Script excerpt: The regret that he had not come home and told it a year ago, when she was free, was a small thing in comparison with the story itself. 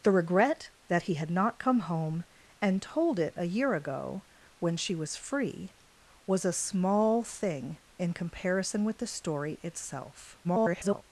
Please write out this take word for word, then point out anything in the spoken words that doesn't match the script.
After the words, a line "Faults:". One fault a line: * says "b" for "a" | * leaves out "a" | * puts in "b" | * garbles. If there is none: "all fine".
The regret that he had not come home and told it a year ago, when she was free, was a small thing in comparison with the story itself. [garbled]
Faults:
* garbles